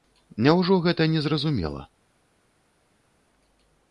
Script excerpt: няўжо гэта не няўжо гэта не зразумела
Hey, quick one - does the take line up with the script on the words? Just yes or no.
no